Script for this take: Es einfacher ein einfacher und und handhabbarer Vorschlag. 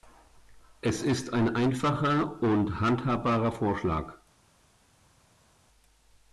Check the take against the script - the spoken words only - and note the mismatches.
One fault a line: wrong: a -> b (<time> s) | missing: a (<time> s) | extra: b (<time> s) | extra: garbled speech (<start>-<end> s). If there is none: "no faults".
wrong: einfacher -> ist (1.0 s)
missing: und (2.8 s)